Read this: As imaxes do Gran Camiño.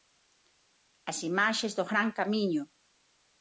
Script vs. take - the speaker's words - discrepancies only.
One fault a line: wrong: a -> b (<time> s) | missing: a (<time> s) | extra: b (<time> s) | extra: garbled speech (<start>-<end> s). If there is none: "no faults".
no faults